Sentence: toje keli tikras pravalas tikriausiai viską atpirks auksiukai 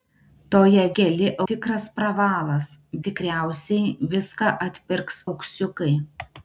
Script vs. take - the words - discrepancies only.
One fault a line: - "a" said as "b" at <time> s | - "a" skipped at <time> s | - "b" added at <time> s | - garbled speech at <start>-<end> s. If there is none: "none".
none